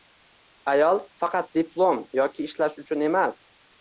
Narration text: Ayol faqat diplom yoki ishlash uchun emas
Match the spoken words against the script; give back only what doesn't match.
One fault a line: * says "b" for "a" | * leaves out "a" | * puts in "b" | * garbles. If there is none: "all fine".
all fine